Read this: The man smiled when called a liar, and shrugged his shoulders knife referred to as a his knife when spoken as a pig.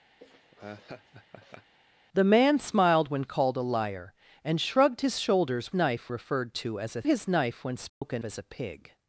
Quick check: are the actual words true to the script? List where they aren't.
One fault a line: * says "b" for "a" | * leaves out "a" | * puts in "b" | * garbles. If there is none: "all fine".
all fine